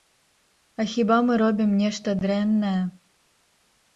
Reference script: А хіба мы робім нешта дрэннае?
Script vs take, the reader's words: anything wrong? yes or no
no